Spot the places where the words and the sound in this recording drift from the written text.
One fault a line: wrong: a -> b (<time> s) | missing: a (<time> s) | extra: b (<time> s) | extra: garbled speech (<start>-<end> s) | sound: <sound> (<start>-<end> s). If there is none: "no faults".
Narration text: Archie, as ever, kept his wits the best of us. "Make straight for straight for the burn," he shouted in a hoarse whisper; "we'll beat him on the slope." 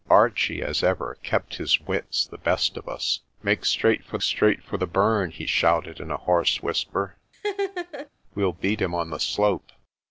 sound: laugh (7.3-8.1 s)